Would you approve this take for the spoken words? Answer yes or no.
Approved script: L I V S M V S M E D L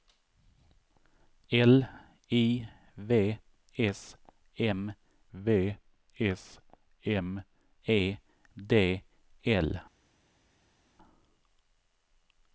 yes